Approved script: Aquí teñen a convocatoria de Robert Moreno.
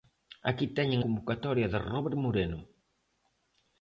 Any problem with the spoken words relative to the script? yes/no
yes